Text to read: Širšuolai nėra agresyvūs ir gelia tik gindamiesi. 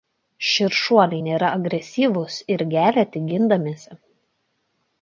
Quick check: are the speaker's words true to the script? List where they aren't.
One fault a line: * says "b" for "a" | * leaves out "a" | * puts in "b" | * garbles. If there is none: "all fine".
all fine